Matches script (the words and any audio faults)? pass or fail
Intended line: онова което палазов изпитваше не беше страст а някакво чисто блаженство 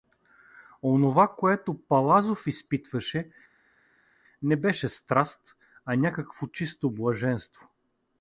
pass